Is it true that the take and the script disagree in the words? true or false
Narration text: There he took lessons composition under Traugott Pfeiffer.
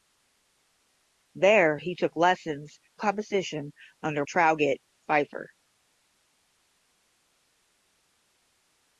false